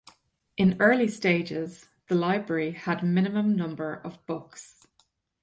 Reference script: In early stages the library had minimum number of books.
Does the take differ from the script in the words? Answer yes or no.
no